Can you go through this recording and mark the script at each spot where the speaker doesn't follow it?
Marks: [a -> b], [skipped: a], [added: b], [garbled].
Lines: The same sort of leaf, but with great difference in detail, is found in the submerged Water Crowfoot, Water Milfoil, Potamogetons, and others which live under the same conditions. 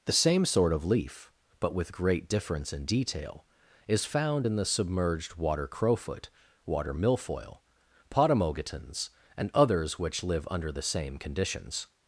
The same sort of leaf, but with great difference in detail, is found in the submerged Water Crowfoot, Water Milfoil, Potamogetons, and others which live under the same conditions.